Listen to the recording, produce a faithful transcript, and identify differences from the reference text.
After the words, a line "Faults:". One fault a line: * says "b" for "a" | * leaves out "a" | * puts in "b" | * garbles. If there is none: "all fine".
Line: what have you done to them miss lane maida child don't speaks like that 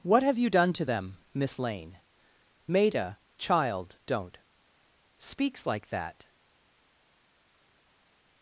what have you done to them miss lane maida child don't speaks like that
Faults:
all fine